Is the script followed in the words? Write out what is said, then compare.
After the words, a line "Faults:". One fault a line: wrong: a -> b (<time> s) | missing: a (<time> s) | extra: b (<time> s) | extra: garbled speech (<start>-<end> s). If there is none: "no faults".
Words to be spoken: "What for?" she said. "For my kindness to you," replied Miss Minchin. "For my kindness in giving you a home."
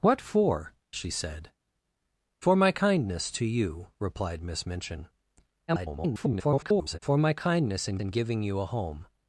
"What for?" she said. "For my kindness to you," replied Miss Minchin. [garbled] "For my kindness in in giving you a home."
Faults:
extra: garbled speech (5.7-7.0 s)
extra: in (8.0 s)